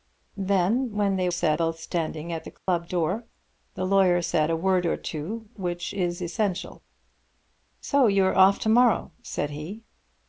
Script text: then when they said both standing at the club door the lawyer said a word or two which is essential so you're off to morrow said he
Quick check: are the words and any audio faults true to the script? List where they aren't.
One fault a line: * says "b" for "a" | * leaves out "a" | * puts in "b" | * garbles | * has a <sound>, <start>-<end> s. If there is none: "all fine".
* has a dropout, 2.6-2.7 s